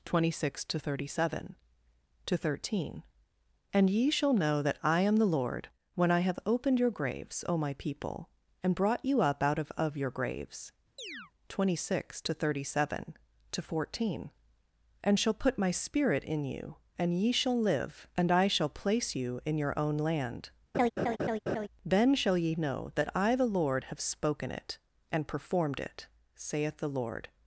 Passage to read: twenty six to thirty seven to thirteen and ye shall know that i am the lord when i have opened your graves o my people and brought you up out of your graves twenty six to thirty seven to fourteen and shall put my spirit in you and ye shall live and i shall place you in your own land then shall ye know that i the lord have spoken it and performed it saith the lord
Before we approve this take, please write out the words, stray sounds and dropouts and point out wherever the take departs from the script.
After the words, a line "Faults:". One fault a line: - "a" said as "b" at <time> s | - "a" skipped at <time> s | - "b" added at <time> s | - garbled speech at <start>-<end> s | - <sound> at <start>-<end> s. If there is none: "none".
twenty six to thirty seven to thirteen and ye shall know that i am the lord when i have opened your graves o my people and brought you up out of of your graves twenty six to thirty seven to fourteen and shall put my spirit in you and ye shall live and i shall place you in your own land then shall ye know that i the lord have spoken it and performed it saith the lord
Faults:
- "of" added at 9.8 s
- chirp at 11.0-11.3 s
- laugh at 20.7-21.7 s